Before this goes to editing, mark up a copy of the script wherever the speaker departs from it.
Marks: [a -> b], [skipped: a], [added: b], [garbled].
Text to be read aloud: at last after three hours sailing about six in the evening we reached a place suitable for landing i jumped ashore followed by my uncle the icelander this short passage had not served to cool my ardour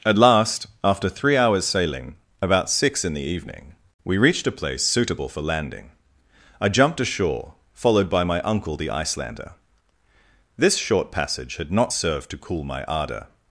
at last after three hours sailing about six in the evening we reached a place suitable for landing i jumped ashore followed by my uncle the icelander this short passage had not served to cool my ardour